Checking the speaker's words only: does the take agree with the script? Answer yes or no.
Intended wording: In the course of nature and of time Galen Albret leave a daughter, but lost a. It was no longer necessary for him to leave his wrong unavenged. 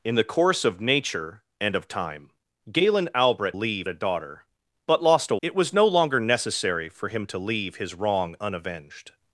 yes